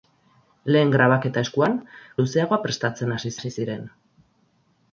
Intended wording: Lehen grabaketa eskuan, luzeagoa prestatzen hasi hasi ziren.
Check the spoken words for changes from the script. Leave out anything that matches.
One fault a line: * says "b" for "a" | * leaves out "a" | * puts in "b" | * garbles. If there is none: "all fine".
all fine